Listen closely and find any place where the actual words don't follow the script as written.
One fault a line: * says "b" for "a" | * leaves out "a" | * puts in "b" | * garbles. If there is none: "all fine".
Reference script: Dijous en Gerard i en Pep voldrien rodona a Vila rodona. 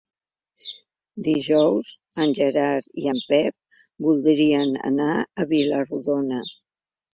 * says "anar" for "rodona"